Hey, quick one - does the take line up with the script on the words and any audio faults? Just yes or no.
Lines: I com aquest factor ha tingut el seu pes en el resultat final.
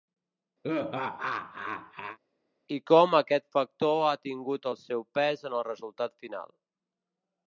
no